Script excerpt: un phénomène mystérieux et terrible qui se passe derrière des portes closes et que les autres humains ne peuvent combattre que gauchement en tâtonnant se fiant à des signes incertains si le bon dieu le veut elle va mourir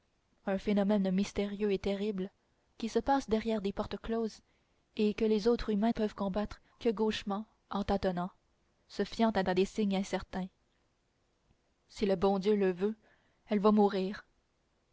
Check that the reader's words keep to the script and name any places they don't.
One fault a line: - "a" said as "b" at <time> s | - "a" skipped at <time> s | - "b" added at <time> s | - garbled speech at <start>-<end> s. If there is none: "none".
- "ne" skipped at 5.9 s
- "à" added at 9.4 s